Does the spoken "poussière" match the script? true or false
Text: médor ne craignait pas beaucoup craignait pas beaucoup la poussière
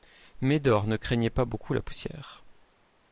true